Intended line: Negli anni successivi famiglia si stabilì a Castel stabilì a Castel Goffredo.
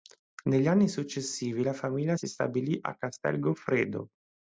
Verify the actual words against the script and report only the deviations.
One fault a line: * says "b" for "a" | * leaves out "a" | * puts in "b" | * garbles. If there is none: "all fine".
* puts in "la"
* leaves out "stabilì a Castel"